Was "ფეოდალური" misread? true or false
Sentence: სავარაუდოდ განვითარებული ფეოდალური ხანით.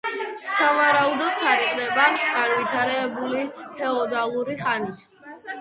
false